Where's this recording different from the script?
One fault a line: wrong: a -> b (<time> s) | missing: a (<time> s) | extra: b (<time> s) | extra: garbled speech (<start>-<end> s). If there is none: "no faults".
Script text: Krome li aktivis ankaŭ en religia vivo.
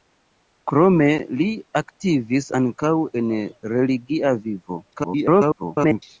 extra: garbled speech (4.9-6.0 s)